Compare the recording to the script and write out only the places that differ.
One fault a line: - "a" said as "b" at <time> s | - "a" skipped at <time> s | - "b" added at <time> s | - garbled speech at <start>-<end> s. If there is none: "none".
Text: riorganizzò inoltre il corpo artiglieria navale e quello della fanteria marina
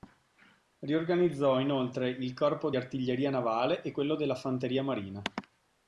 none